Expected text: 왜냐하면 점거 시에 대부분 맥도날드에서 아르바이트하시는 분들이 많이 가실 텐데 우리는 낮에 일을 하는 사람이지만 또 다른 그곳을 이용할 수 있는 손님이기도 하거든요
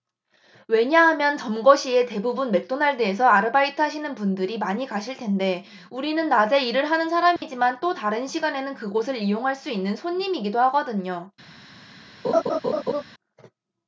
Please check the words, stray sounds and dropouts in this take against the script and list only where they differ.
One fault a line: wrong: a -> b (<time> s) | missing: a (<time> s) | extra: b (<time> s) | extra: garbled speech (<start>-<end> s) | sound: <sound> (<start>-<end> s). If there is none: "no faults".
sound: dropout (7.4-7.4 s)
extra: 시간에는 (8.3 s)
sound: laugh (12.2-13.0 s)